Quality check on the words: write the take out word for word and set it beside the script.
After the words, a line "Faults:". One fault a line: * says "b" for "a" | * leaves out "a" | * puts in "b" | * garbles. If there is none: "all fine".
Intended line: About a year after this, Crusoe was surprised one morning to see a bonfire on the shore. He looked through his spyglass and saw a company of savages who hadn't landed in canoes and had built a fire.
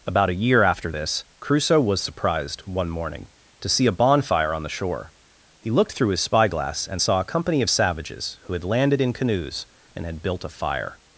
About a year after this, Crusoe was surprised one morning to see a bonfire on the shore. He looked through his spyglass and saw a company of savages who had landed in canoes and had built a fire.
Faults:
* says "had" for "hadn't"